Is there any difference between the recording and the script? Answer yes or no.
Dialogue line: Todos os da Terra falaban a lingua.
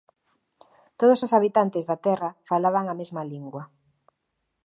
yes